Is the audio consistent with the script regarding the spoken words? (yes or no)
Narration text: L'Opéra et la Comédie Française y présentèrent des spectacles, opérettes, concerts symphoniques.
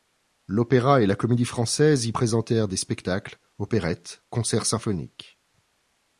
yes